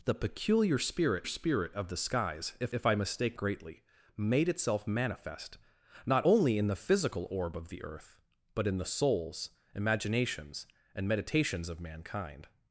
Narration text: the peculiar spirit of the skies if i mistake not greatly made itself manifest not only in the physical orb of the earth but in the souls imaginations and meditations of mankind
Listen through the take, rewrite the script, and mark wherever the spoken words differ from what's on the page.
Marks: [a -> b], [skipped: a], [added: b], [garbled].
the peculiar spirit [added: spirit] of the skies if [added: if] i mistake [skipped: not] greatly made itself manifest not only in the physical orb of the earth but in the souls imaginations and meditations of mankind